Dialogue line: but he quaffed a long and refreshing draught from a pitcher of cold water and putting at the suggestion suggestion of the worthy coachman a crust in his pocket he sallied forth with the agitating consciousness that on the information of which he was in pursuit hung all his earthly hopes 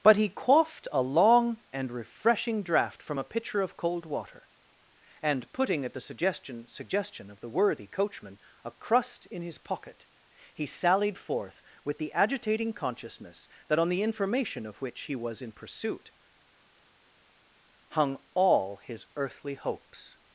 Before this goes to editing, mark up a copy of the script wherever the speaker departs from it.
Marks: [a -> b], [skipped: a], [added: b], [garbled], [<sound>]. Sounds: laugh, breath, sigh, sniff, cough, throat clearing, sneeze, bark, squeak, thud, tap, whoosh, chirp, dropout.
but he quaffed a long and refreshing draught from a pitcher of cold water and putting at the suggestion suggestion of the worthy coachman a crust in his pocket he sallied forth with the agitating consciousness that on the information of which he was in pursuit hung all his earthly hopes